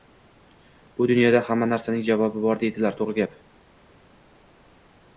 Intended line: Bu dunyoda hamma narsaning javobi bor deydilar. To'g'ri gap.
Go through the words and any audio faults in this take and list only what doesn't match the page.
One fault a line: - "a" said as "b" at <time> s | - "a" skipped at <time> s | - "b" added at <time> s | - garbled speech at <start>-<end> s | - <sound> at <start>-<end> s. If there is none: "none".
none